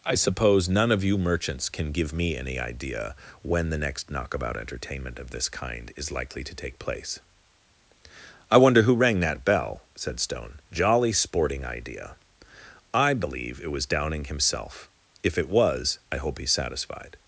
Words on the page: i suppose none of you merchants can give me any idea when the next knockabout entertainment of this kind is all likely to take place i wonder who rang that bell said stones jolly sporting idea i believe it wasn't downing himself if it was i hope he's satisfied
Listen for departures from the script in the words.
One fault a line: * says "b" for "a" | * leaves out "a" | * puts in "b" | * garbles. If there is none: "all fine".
* leaves out "all"
* says "stone" for "stones"
* says "was" for "wasn't"